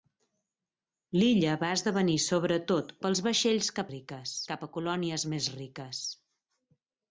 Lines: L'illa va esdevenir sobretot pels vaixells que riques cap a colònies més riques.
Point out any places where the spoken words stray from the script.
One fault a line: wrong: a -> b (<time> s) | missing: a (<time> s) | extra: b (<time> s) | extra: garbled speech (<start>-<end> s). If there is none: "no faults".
no faults